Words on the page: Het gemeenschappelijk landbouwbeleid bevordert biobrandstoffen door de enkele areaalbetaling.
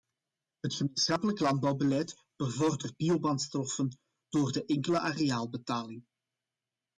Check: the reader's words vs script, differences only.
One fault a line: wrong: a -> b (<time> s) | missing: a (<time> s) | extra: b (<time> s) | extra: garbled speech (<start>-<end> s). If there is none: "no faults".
no faults